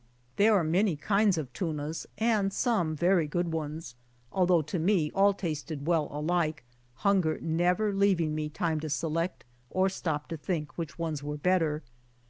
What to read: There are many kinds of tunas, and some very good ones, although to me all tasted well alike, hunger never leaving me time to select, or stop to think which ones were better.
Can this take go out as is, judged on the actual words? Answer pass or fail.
pass